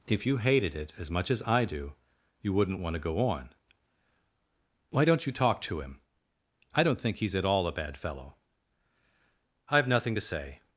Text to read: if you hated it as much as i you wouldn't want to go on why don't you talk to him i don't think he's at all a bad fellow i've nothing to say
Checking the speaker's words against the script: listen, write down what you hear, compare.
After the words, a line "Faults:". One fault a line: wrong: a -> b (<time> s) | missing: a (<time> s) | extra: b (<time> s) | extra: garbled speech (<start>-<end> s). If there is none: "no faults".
if you hated it as much as i do you wouldn't want to go on why don't you talk to him i don't think he's at all a bad fellow i've nothing to say
Faults:
extra: do (1.6 s)